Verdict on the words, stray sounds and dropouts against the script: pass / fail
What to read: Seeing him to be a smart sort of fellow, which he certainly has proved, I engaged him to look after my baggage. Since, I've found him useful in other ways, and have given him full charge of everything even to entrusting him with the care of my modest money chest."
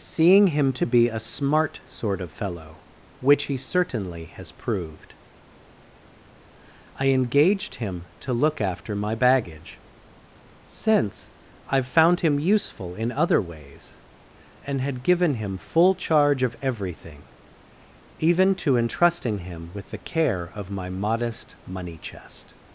fail